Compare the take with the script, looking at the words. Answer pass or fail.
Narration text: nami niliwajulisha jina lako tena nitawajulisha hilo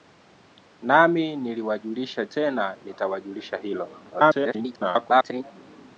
fail